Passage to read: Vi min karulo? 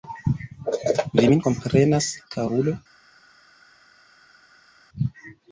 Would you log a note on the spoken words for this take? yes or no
yes